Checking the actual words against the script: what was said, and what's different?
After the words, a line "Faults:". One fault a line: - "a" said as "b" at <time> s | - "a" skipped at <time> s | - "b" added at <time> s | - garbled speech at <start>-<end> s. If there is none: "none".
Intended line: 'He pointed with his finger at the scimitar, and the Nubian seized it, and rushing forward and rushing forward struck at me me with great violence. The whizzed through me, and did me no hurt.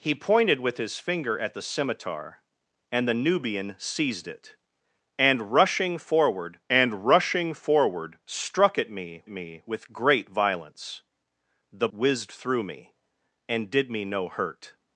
'He pointed with his finger at the scimitar, and the Nubian seized it, and rushing forward and rushing forward struck at me me with great violence. The whizzed through me, and did me no hurt.
Faults:
none